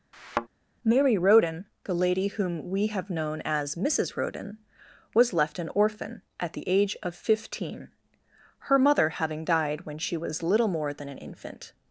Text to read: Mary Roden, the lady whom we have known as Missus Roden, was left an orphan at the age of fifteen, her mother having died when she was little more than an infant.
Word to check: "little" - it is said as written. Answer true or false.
true